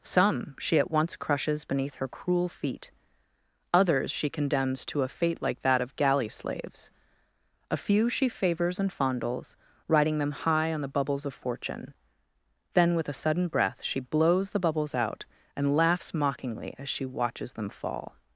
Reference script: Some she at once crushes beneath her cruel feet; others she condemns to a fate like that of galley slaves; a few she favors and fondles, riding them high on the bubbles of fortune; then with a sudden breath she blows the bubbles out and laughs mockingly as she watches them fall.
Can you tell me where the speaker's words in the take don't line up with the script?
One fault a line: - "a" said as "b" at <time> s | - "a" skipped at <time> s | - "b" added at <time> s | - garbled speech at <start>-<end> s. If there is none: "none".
none